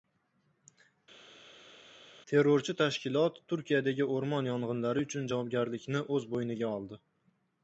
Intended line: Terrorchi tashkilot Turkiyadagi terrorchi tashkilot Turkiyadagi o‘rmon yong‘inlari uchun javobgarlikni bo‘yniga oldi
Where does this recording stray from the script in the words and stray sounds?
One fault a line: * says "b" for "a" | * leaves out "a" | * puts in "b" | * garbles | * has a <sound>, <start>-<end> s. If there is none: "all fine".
* leaves out "terrorchi tashkilot Turkiyadagi"
* puts in "o‘z"